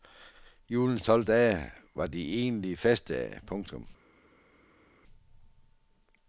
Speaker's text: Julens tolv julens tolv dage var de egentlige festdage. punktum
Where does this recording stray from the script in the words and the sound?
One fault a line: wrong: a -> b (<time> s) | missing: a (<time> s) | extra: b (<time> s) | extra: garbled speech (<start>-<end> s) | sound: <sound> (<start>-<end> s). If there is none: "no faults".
missing: julens tolv (1.2 s)